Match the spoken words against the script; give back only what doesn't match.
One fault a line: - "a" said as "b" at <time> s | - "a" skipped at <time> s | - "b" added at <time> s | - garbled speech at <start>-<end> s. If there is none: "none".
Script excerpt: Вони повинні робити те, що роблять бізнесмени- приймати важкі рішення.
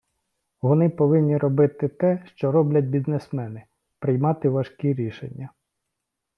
none